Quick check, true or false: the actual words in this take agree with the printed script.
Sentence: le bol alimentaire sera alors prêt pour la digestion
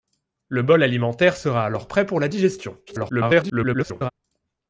false